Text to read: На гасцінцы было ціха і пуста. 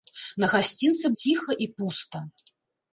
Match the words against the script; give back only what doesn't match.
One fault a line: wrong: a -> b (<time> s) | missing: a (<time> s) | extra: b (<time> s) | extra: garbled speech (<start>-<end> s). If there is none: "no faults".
missing: было (1.1 s)